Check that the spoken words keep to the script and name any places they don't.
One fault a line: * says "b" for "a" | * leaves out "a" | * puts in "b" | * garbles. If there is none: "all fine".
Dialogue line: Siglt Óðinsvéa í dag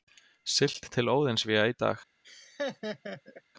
* puts in "til"